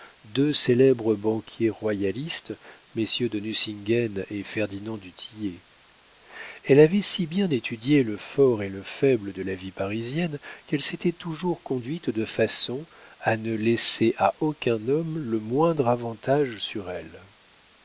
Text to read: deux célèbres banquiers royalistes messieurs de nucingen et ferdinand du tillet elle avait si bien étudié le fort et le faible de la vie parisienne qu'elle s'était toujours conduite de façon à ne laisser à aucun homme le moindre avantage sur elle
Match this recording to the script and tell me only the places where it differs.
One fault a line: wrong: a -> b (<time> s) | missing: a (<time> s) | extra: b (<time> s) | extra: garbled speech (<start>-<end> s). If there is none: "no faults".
no faults